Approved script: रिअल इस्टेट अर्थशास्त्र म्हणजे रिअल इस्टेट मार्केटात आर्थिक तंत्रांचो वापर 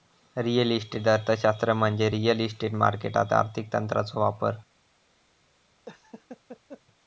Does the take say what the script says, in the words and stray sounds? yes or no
no